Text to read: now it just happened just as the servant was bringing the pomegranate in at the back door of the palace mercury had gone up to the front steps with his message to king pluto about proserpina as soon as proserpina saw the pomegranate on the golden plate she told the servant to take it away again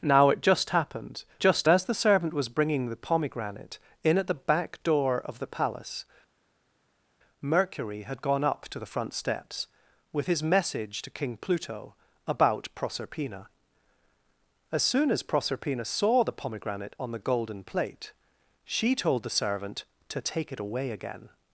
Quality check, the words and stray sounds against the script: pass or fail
pass